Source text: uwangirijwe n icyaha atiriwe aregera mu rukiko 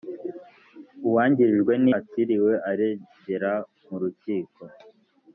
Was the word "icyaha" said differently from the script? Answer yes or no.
yes